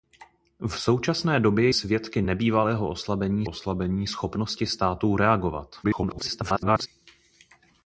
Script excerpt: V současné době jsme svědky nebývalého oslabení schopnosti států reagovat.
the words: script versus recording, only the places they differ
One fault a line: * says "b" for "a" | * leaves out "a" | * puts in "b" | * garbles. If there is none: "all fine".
* leaves out "jsme"
* puts in "oslabení"
* garbles